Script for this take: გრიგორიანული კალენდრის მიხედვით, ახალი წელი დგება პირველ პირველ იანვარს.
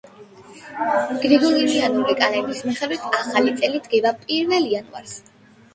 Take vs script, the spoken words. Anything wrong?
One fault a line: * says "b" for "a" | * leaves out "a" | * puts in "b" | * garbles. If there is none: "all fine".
* leaves out "პირველ"